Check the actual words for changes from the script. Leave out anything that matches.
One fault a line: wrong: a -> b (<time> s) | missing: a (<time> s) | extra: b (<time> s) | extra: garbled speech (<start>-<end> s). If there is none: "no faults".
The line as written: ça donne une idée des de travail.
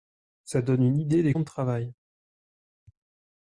no faults